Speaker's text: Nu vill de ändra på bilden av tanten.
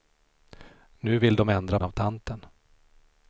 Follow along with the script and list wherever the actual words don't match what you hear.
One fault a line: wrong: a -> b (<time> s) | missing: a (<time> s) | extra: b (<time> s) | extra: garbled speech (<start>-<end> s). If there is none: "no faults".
missing: på bilden (1.8 s)